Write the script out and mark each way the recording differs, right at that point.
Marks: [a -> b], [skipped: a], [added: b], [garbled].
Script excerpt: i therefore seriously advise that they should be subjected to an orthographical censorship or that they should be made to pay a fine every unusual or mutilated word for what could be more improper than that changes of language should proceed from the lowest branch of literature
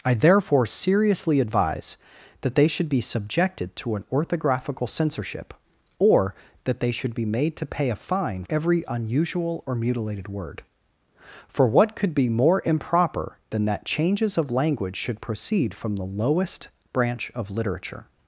i therefore seriously advise that they should be subjected to an orthographical censorship or that they should be made to pay a fine every unusual or mutilated word for what could be more improper than that changes of language should proceed from the lowest branch of literature